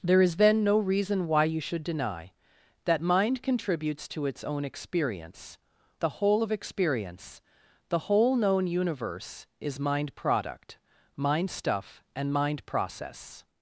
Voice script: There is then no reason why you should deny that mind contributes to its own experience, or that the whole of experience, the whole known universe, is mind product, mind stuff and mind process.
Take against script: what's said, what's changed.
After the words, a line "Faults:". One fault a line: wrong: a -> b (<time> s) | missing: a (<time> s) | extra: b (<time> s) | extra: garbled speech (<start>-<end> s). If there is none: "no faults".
There is then no reason why you should deny that mind contributes to its own experience, the whole of experience, the whole known universe, is mind product, mind stuff and mind process.
Faults:
missing: or that (5.6 s)